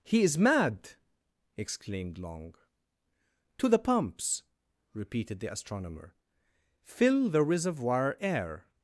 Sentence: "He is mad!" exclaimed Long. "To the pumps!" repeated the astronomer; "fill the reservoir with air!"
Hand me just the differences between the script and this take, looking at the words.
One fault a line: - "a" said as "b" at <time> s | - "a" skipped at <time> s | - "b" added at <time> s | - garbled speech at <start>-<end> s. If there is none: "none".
- "with" skipped at 8.2 s